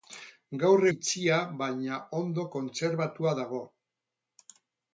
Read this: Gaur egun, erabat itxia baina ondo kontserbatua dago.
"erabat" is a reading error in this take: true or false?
true